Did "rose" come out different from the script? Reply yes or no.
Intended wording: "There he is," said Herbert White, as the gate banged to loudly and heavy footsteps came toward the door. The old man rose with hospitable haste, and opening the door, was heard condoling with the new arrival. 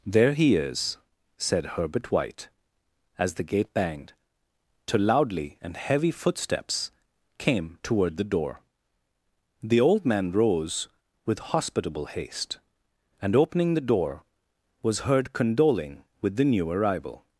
no